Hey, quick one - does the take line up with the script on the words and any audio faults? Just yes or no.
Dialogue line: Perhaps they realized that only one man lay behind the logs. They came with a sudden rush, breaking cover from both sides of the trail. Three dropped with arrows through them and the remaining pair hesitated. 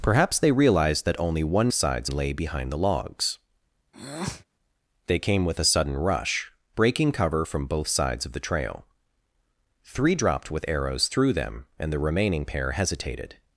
no